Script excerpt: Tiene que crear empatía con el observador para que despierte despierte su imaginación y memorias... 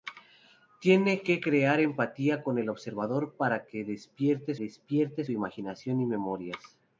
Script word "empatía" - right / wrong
right